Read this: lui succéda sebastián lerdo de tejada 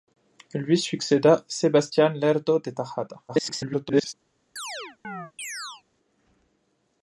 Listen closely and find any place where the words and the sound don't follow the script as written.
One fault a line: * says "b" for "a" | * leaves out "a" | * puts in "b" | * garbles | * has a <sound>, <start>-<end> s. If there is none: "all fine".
* garbles
* has a chirp, 4.6-5.8 s